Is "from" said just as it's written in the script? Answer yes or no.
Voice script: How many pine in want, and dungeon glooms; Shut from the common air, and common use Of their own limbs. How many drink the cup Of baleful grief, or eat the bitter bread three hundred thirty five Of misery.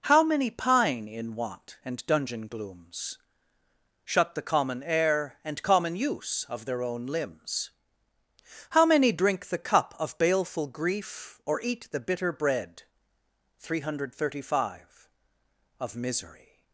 no